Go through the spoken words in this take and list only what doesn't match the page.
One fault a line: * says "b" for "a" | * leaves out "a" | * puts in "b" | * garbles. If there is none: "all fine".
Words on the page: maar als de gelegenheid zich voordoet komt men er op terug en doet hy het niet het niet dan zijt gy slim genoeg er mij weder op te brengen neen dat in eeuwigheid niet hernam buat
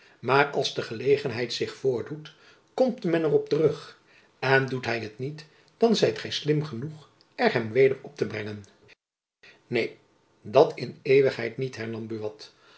* leaves out "het niet"
* says "hem" for "mij"